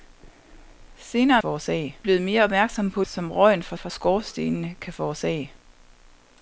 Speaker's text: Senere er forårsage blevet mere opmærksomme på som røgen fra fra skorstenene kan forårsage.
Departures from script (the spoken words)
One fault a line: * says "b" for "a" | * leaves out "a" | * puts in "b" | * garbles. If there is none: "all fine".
all fine